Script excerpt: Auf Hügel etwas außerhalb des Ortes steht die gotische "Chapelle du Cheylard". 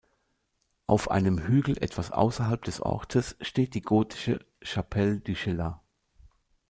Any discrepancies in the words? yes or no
yes